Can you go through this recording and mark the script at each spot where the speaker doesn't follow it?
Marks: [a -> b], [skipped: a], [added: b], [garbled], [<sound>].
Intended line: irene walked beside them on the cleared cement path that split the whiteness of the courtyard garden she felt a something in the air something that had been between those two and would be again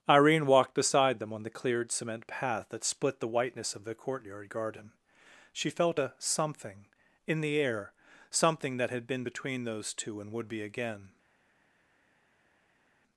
irene walked beside them on the cleared cement path that split the whiteness of the courtyard garden she felt a something in the air something that had been between those two and would be again